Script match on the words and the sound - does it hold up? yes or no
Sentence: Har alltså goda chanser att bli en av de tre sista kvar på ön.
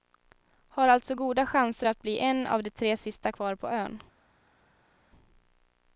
yes